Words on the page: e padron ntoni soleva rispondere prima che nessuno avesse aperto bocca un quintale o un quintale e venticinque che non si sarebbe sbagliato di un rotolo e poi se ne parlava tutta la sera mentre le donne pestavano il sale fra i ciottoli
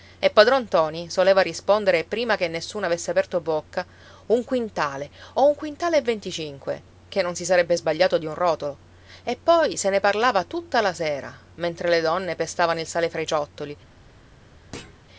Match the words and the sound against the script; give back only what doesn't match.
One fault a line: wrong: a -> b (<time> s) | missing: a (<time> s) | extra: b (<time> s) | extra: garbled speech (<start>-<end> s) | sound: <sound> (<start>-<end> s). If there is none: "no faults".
sound: thud (14.7-15.0 s)